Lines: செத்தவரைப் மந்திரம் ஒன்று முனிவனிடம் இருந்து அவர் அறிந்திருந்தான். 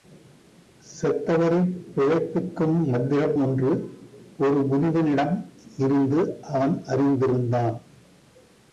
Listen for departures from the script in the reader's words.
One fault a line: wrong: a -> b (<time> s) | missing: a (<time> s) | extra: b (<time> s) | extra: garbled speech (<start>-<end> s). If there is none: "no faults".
extra: பிழைப்பிக்கும் (2.0 s)
extra: ஒரு (4.4 s)
wrong: அவர் -> அவன் (6.4 s)